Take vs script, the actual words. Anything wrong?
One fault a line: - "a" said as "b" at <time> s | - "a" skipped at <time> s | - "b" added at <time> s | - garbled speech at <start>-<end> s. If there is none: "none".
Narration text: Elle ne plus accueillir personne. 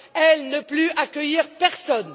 none